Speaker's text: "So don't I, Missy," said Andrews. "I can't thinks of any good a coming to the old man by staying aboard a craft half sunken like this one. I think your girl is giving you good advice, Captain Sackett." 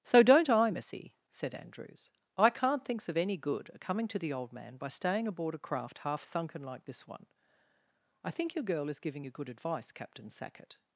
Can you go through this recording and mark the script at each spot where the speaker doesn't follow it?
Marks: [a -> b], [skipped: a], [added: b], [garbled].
"So don't I, Missy," said Andrews. "I can't thinks of any good a coming to the old man by staying aboard a craft half sunken like this one. I think your girl is giving you good advice, Captain Sackett."